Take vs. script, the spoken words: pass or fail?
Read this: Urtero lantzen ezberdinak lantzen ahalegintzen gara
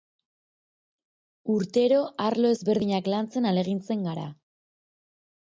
fail